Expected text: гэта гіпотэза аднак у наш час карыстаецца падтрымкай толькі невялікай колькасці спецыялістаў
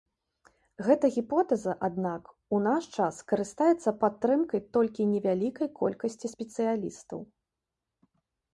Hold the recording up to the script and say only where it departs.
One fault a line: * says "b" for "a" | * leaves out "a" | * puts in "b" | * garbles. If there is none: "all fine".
all fine